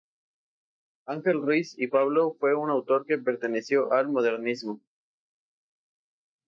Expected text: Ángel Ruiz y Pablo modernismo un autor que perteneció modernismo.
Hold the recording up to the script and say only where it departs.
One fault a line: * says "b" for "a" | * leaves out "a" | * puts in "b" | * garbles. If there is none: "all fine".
* says "fue" for "modernismo"
* puts in "al"